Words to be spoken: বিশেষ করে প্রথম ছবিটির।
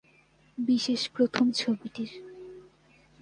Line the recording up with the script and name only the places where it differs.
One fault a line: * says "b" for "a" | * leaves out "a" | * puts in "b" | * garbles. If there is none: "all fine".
* leaves out "করে"